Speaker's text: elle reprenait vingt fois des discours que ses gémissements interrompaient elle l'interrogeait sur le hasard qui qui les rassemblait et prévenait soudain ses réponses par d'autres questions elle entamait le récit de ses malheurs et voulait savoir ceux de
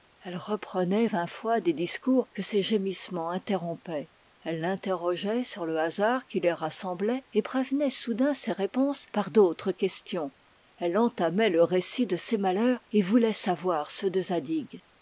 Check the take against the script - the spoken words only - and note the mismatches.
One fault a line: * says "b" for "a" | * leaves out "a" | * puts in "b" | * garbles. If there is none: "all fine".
* leaves out "qui"